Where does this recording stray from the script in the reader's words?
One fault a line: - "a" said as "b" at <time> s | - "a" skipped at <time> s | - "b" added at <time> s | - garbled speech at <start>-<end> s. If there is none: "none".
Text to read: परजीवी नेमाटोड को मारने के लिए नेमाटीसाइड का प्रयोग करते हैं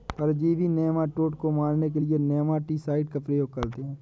none